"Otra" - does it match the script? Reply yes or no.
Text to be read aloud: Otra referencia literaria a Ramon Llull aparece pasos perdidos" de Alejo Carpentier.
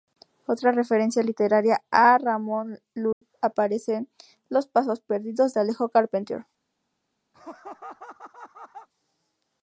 yes